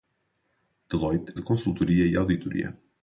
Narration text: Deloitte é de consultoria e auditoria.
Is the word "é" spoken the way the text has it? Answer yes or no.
yes